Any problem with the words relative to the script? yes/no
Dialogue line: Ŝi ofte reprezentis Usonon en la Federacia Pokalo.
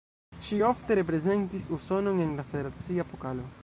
no